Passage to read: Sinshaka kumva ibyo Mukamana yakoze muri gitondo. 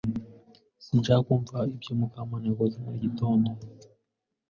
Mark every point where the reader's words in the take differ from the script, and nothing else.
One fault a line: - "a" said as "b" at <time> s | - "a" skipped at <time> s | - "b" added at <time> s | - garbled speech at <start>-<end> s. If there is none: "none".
none